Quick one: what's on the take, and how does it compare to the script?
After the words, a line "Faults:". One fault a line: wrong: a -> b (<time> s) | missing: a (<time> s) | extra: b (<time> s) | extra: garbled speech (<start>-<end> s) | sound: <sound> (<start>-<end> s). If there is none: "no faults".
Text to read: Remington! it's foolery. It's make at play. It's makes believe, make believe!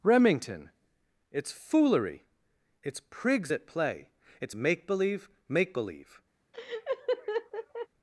Remington! it's foolery. It's prigs at play. It's make believe, make believe!
Faults:
wrong: make -> prigs (3.1 s)
wrong: makes -> make (4.5 s)
sound: laugh (6.5-7.9 s)